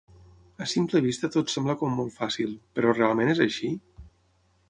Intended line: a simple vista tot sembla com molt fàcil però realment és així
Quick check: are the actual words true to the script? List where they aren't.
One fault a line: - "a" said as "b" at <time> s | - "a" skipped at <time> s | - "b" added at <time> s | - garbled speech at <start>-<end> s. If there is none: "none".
none